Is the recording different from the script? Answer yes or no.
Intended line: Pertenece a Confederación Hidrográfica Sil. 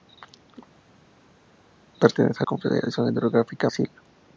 no